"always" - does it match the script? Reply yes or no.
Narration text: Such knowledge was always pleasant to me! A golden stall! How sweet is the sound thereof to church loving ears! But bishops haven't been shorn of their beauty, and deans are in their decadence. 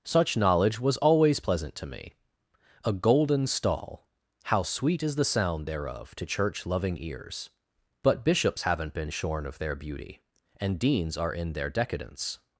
yes